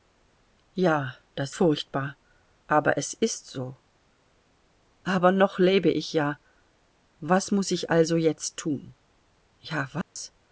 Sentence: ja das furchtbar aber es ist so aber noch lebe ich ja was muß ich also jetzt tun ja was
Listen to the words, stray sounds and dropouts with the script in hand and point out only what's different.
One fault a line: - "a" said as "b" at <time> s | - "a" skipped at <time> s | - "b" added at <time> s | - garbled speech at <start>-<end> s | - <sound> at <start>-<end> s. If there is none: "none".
- dropout at 10.0-10.2 s